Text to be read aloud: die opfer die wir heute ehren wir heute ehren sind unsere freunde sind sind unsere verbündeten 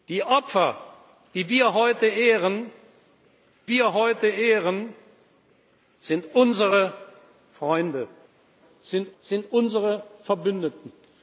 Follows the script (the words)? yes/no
yes